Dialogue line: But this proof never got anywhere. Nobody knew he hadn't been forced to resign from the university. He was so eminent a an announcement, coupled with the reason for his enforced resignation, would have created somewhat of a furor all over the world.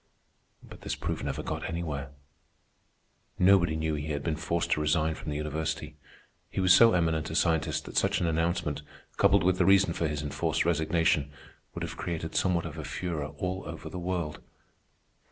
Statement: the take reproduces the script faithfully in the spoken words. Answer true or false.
false